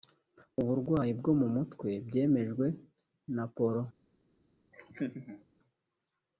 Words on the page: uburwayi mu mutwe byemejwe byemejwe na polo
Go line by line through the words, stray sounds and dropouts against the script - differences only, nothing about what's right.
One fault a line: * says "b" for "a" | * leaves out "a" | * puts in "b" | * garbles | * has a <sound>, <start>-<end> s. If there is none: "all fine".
* puts in "bwo"
* leaves out "byemejwe"
* has a laugh, 4.7-5.4 s